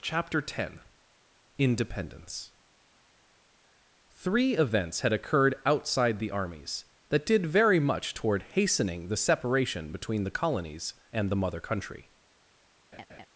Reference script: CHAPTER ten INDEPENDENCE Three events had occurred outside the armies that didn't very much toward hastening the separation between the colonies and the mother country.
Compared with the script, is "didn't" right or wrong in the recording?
wrong